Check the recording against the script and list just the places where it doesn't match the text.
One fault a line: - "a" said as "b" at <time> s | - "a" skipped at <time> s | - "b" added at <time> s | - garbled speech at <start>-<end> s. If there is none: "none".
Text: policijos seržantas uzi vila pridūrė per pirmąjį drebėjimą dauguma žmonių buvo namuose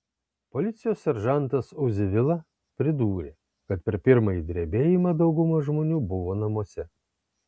- "kad" added at 3.7 s